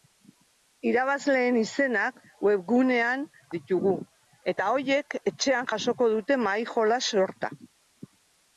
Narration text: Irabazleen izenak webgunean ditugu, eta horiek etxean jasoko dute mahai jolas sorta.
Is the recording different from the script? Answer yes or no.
no